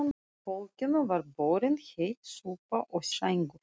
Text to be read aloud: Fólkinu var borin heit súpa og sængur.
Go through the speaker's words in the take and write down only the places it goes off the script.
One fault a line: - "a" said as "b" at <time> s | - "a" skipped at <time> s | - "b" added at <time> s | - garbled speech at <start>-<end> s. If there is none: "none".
none